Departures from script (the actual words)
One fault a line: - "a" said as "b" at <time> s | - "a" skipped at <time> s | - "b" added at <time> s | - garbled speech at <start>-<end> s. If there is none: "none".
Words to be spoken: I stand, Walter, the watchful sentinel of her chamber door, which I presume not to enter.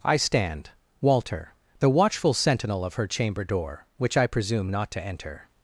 none